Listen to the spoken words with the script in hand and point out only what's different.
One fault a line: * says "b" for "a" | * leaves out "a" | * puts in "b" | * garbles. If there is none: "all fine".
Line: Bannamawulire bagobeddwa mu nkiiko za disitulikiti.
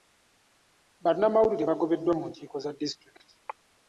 all fine